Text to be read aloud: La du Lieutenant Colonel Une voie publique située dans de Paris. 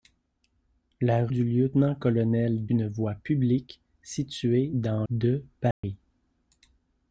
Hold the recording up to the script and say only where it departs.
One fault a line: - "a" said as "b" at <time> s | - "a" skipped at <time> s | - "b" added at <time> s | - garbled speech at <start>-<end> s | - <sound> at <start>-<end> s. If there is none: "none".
- dropout at 5.7-5.8 s